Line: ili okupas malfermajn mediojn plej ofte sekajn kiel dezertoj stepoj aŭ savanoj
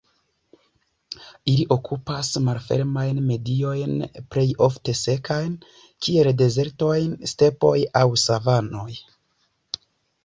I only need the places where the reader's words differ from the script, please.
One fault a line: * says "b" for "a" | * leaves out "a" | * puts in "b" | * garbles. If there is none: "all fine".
all fine